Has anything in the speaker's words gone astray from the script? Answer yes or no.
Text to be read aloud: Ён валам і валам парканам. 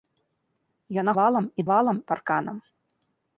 no